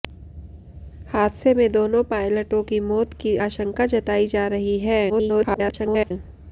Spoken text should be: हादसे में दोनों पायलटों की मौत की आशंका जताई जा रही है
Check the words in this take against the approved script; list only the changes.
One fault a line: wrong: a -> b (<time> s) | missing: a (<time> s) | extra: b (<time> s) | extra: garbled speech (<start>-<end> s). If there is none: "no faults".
extra: garbled speech (5.1-6.1 s)